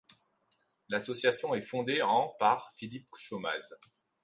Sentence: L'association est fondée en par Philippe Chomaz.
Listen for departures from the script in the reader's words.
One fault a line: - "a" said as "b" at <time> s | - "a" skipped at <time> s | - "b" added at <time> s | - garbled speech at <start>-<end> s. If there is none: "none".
none